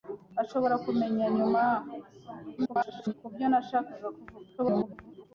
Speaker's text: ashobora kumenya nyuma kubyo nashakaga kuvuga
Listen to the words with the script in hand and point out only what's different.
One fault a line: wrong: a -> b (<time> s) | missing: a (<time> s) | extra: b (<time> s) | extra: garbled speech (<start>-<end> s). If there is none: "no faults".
extra: garbled speech (2.6-3.1 s)
extra: garbled speech (4.6-5.3 s)